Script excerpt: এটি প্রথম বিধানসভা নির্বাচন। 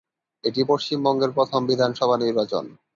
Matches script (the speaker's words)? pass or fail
fail